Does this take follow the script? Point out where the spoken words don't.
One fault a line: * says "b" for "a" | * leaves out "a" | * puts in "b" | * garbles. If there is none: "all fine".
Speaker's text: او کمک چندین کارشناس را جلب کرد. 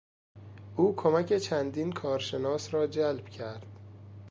all fine